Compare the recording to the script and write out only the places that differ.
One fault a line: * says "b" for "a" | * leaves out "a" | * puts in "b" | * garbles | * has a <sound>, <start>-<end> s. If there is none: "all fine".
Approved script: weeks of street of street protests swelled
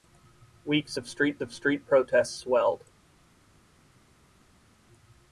all fine